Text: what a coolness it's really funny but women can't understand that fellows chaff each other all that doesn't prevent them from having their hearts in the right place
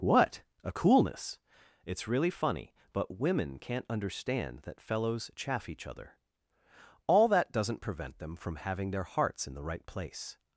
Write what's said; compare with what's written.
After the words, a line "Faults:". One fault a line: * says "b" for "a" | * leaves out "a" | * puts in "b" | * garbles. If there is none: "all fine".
what a coolness it's really funny but women can't understand that fellows chaff each other all that doesn't prevent them from having their hearts in the right place
Faults:
all fine